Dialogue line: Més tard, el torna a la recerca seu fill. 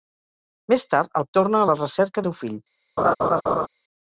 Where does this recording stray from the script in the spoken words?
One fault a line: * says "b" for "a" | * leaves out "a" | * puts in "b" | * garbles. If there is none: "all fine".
all fine